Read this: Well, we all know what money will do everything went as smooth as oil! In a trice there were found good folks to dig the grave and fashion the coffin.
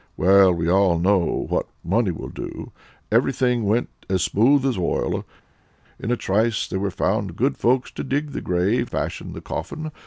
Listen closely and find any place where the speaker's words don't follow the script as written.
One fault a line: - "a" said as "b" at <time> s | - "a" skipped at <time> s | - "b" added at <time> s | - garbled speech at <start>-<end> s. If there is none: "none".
- "and" skipped at 8.9 s